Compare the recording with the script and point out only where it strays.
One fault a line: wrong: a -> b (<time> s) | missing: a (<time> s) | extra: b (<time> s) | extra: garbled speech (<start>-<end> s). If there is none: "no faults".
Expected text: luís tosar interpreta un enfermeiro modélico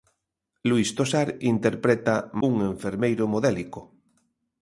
no faults